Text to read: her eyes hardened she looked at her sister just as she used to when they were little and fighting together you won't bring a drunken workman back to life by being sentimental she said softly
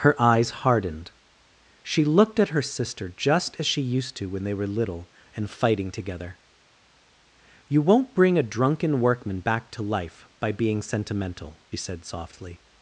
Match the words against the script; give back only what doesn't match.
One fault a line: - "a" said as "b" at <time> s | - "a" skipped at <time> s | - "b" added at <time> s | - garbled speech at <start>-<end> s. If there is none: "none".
- "she" skipped at 11.6 s